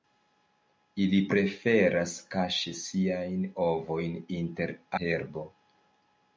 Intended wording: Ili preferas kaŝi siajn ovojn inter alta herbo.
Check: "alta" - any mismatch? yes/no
yes